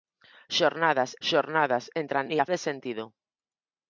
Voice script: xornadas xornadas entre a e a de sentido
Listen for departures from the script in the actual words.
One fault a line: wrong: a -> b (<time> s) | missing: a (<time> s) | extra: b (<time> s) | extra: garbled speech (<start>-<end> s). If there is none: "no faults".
no faults